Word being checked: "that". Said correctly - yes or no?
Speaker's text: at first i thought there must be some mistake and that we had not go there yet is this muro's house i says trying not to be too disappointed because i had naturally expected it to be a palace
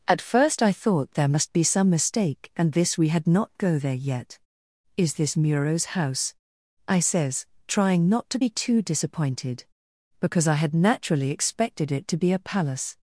no